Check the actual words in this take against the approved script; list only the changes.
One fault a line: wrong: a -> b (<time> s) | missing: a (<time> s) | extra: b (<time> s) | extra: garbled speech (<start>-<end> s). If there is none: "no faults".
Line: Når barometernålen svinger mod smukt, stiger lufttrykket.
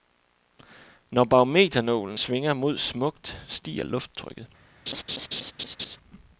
no faults